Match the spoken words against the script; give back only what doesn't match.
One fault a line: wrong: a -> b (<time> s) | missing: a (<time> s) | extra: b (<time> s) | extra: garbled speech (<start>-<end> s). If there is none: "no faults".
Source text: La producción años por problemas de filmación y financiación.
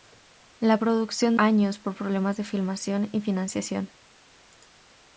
no faults